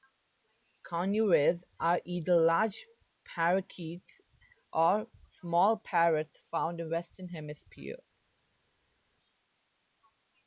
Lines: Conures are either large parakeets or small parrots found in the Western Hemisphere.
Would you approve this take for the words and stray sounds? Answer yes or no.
yes